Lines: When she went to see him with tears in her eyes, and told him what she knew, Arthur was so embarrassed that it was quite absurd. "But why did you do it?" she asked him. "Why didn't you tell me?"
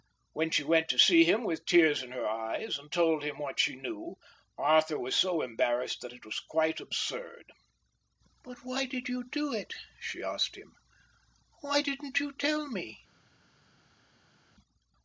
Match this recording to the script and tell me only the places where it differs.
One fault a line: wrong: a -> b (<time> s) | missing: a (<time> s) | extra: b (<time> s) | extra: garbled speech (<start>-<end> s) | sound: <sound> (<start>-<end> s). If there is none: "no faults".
no faults